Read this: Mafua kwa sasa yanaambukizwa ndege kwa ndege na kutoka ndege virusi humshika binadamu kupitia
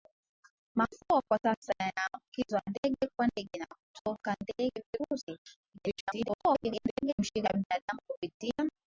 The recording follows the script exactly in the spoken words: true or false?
false